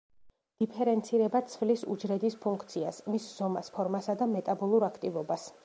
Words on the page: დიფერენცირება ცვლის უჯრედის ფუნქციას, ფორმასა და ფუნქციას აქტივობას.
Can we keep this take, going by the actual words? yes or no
no